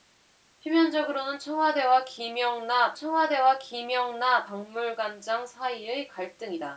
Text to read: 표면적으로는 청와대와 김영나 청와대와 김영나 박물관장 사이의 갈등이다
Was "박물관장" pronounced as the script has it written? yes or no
yes